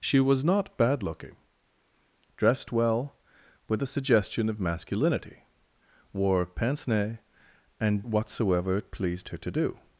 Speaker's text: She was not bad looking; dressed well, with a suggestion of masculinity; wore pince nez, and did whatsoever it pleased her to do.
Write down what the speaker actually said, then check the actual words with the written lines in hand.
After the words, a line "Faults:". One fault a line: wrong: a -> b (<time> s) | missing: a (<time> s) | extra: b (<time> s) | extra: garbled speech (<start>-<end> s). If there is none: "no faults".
She was not bad looking; dressed well, with a suggestion of masculinity; wore pince nez, and whatsoever it pleased her to do.
Faults:
missing: did (8.0 s)